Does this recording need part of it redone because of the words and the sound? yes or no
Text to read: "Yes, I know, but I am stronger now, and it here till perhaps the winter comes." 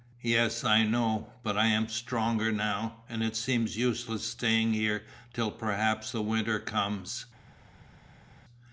yes